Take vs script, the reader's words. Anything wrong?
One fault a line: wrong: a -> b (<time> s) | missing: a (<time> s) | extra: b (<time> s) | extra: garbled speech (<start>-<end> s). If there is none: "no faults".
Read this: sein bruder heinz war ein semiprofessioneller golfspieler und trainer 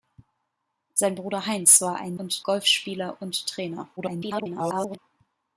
wrong: semiprofessioneller -> und (2.2 s)
extra: garbled speech (4.0-5.0 s)